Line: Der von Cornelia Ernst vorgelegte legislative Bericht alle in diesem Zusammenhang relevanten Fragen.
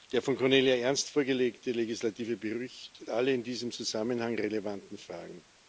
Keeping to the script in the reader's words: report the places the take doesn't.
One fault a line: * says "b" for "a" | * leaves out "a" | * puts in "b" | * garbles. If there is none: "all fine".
all fine